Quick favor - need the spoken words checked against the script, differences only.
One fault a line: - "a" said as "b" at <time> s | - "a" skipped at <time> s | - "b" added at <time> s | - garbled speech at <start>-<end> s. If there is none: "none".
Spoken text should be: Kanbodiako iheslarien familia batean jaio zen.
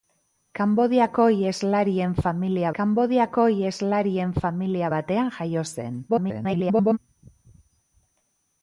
- "kanbodiako iheslarien familia" added at 2.8 s
- garbled speech at 6.1-7.0 s